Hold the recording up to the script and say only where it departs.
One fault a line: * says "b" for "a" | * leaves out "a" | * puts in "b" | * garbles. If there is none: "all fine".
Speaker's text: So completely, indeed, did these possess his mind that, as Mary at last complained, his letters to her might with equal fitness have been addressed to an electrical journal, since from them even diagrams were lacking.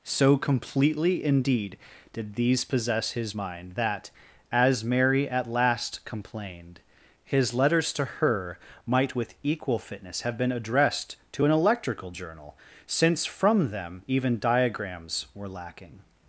all fine